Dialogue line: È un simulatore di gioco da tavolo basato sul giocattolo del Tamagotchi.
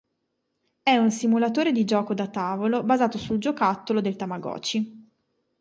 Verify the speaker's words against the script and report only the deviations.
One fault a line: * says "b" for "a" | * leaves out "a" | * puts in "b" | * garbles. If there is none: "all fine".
all fine